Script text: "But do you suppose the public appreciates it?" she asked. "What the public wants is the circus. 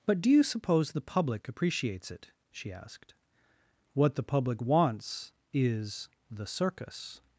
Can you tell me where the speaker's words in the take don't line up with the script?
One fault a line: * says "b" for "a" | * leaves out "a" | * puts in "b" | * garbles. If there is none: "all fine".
all fine